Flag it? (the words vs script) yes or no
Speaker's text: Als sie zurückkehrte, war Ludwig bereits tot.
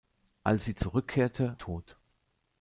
yes